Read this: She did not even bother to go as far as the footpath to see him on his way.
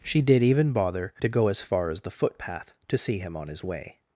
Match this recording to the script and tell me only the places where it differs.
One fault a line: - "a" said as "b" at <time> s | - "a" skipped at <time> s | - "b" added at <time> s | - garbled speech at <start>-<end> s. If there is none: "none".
- "not" skipped at 0.4 s